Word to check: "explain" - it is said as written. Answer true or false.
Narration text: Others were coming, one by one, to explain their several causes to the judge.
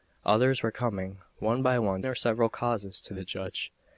false